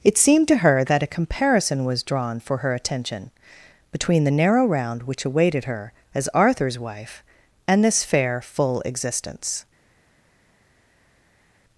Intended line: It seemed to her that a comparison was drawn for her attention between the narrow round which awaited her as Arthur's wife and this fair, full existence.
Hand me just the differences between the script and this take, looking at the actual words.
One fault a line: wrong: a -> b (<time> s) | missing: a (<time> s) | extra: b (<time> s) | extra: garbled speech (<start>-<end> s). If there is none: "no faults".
no faults